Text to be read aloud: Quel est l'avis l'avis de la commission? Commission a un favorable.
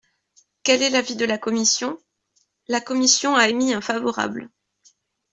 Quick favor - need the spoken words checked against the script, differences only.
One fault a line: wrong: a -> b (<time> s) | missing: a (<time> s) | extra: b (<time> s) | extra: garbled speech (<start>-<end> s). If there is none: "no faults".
missing: l'avis (1.1 s)
extra: La (2.7 s)
extra: émis (3.4 s)